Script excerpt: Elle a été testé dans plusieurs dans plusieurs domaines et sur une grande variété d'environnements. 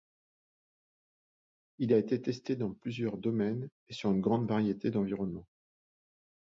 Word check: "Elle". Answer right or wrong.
wrong